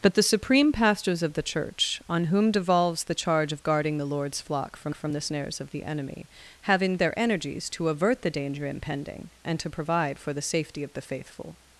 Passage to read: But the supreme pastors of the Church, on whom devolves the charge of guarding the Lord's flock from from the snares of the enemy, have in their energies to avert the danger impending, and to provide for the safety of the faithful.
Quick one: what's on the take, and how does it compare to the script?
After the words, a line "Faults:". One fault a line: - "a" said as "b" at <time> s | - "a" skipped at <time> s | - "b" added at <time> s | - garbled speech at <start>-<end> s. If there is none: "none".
But the supreme pastors of the Church, on whom devolves the charge of guarding the Lord's flock from from the snares of the enemy, have in their energies to avert the danger impending, and to provide for the safety of the faithful.
Faults:
none